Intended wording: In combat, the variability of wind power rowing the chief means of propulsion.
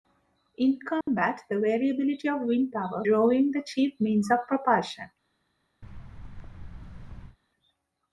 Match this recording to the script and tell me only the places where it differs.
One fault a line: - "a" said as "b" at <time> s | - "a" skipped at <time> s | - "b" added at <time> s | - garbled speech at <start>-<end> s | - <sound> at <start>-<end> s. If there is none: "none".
- dropout at 1.0-1.1 s
- thud at 5.8-7.4 s